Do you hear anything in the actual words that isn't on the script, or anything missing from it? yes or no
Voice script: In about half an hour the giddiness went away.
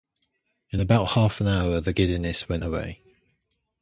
no